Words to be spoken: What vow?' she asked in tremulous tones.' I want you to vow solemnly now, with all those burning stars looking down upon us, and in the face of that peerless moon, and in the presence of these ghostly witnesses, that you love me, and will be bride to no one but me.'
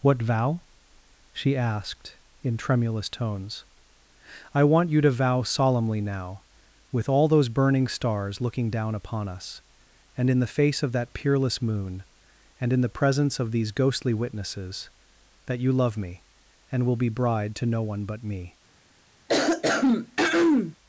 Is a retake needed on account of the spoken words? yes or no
no